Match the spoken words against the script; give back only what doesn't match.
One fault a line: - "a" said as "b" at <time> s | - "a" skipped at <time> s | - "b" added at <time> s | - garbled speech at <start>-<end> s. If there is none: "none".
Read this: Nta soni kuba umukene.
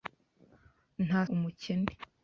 - "soni kuba" skipped at 1.2 s